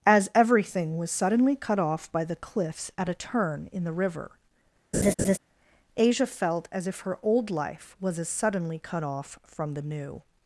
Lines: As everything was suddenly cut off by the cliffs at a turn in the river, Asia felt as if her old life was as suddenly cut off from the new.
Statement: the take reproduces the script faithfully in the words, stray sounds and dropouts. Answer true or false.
false